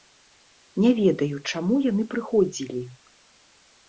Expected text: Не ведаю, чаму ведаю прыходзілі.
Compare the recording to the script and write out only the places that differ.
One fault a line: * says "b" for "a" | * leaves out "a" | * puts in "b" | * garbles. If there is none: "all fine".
* says "яны" for "ведаю"